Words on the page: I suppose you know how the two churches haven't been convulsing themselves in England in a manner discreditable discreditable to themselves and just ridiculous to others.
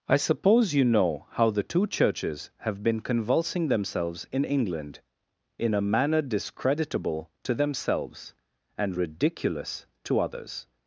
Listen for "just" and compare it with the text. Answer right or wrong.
wrong